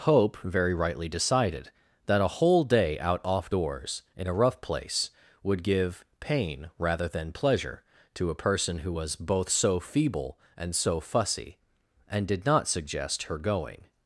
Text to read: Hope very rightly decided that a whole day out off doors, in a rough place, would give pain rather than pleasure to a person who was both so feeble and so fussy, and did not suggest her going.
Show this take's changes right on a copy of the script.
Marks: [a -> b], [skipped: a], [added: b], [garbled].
Hope very rightly decided that a whole day out off doors, in a rough place, would give pain rather than pleasure to a person who was both so feeble and so fussy, and did not suggest her going.